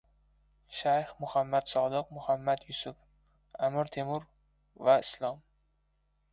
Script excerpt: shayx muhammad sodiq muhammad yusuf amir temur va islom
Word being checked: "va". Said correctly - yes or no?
yes